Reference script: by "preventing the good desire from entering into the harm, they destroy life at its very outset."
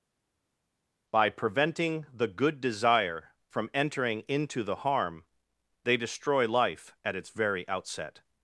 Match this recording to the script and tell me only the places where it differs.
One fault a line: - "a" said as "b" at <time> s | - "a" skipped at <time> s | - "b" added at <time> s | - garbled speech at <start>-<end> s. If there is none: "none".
none